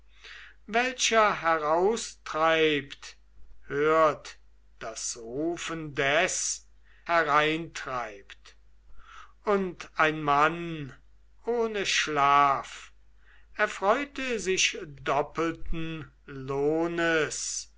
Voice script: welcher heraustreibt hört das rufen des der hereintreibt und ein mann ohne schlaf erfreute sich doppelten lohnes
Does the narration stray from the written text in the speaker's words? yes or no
yes